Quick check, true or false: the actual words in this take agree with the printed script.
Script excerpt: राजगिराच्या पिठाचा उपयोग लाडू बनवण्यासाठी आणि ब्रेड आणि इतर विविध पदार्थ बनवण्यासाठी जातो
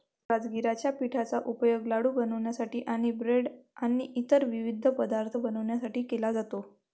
false